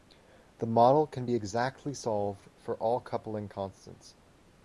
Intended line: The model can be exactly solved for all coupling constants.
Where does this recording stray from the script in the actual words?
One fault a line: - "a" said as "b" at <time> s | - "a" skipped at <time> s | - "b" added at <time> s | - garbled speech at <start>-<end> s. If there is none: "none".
none